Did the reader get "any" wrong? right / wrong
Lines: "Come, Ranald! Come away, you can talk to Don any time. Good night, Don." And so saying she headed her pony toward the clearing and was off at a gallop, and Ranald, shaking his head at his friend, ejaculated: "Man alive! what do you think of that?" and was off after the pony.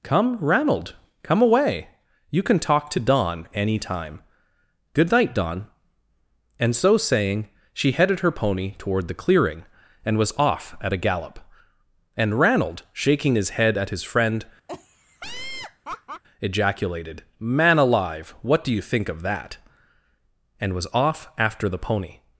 right